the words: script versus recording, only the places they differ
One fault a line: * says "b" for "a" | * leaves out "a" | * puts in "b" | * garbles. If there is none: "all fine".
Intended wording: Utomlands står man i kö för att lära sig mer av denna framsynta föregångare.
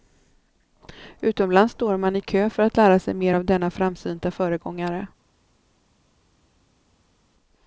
all fine